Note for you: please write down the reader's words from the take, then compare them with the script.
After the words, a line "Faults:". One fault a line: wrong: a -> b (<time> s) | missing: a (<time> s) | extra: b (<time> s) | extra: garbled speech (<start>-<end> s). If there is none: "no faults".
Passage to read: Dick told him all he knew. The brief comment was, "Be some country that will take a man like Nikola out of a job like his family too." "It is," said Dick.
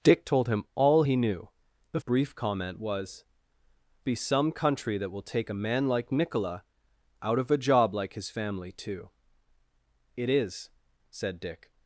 Dick told him all he knew. The brief comment was, "Be some country that will take a man like Nikola out of a job like his family too." "It is," said Dick.
Faults:
no faults